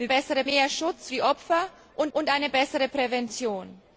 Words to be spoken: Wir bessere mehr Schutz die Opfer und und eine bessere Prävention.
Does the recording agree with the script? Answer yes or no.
yes